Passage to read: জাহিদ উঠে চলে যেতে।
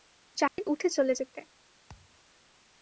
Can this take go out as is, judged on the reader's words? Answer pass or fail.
pass